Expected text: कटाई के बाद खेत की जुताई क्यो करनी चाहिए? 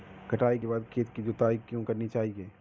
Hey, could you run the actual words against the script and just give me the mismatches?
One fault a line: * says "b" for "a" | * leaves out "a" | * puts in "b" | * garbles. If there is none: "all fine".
all fine